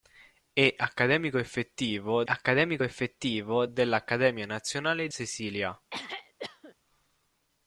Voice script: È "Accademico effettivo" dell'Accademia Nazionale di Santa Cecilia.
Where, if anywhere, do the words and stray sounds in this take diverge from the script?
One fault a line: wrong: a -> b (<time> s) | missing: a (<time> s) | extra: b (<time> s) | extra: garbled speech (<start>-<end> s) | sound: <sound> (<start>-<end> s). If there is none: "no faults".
extra: accademico effettivo (2.3 s)
missing: di Santa (5.1 s)
sound: throat clearing (5.9-6.7 s)